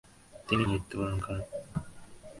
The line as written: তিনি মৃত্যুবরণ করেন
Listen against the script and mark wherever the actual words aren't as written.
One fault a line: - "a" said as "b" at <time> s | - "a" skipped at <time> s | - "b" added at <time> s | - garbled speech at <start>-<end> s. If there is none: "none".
none